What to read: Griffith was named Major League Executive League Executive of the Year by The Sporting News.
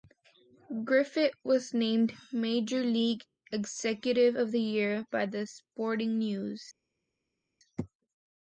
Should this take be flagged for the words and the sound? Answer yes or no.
yes